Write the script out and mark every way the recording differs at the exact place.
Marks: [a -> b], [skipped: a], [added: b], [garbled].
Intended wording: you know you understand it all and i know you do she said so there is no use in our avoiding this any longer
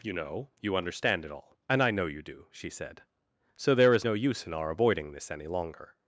you know you understand it all and i know you do she said so there is no use in our avoiding this any longer